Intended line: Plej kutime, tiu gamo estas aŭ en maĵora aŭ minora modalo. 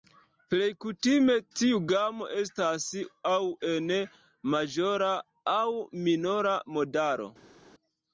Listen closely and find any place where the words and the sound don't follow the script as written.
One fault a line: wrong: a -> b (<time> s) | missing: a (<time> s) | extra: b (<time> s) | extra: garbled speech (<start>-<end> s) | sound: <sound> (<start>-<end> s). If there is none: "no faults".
no faults